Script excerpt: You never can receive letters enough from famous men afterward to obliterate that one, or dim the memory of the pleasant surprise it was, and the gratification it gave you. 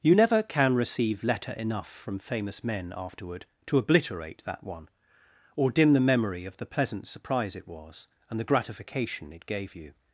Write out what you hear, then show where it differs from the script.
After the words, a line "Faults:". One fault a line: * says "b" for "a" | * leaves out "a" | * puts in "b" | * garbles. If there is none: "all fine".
You never can receive letter enough from famous men afterward to obliterate that one, or dim the memory of the pleasant surprise it was, and the gratification it gave you.
Faults:
* says "letter" for "letters"